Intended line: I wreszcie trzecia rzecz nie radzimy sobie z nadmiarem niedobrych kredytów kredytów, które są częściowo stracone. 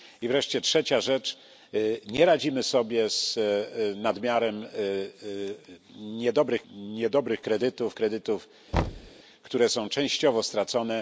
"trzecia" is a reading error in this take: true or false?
false